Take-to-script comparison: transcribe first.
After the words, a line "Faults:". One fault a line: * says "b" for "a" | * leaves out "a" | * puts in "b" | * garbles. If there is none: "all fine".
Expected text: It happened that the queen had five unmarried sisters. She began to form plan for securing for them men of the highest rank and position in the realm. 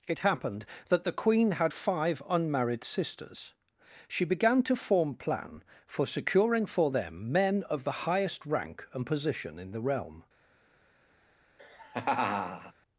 It happened that the queen had five unmarried sisters. She began to form plan for securing for them men of the highest rank and position in the realm.
Faults:
all fine